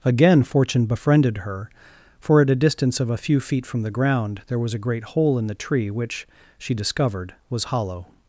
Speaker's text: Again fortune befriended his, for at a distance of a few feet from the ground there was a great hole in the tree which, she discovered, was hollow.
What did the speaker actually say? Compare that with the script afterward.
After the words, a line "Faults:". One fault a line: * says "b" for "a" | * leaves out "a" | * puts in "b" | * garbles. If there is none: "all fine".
Again fortune befriended her, for at a distance of a few feet from the ground there was a great hole in the tree which, she discovered, was hollow.
Faults:
* says "her" for "his"